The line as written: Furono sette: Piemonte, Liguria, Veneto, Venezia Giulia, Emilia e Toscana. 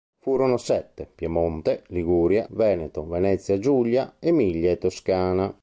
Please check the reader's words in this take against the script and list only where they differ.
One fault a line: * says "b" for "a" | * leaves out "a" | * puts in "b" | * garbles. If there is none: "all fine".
all fine